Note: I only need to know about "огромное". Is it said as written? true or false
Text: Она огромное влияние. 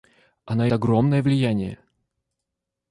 true